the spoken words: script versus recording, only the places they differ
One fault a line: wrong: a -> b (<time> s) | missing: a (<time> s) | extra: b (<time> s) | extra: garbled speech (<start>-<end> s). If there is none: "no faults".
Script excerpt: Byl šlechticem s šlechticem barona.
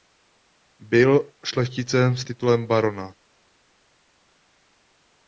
wrong: šlechticem -> titulem (2.2 s)